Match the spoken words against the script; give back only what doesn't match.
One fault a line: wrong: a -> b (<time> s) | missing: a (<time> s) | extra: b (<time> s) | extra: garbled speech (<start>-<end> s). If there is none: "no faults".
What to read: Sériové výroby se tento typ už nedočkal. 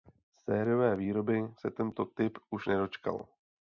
no faults